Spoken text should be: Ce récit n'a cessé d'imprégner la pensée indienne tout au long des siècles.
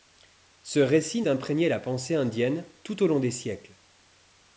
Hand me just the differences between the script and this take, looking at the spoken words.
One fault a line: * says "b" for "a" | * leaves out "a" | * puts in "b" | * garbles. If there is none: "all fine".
* leaves out "n'a cessé"